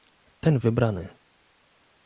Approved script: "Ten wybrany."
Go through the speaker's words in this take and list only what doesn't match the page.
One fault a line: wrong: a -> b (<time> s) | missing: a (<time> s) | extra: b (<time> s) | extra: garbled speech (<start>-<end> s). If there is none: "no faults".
no faults